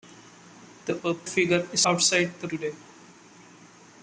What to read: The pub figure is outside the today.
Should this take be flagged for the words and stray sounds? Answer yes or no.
no